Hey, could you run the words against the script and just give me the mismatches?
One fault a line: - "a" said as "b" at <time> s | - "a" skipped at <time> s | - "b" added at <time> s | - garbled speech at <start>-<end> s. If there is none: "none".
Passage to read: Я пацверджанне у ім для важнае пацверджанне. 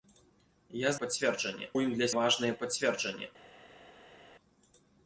none